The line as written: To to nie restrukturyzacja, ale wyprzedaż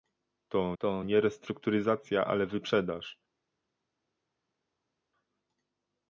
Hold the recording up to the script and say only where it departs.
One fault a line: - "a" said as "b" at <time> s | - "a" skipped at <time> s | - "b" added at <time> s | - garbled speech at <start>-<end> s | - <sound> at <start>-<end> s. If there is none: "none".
none